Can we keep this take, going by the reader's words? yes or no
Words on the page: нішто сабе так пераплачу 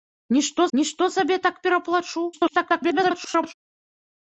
no